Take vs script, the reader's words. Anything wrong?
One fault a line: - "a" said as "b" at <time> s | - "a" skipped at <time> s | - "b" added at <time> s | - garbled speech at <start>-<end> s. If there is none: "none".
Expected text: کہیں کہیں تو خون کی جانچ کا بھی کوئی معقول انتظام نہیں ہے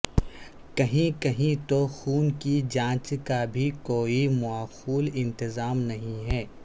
none